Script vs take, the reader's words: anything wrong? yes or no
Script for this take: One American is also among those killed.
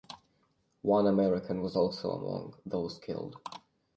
yes